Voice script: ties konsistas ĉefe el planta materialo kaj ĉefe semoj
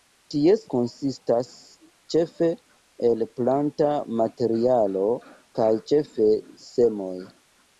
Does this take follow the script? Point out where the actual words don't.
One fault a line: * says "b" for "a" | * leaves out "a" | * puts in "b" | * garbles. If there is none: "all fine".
all fine